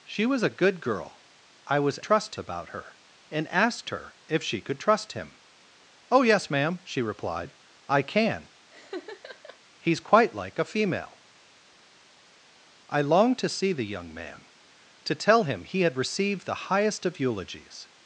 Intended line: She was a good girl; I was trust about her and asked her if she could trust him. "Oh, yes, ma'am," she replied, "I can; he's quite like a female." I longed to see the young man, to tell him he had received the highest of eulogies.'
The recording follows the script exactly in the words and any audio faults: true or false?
false